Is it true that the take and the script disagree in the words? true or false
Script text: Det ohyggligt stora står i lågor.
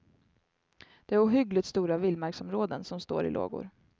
true